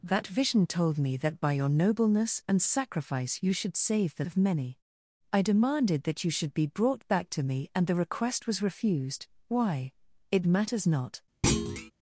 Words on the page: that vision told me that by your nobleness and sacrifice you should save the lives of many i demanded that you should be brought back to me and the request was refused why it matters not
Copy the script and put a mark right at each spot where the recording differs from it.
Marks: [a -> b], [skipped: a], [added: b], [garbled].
that vision told me that by your nobleness and sacrifice you should save the [skipped: lives] of many i demanded that you should be brought back to me and the request was refused why it matters not